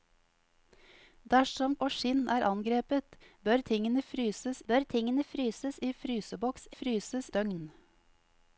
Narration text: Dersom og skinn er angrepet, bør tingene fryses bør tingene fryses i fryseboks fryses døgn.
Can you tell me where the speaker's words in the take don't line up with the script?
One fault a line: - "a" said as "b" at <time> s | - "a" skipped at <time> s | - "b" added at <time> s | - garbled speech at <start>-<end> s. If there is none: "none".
none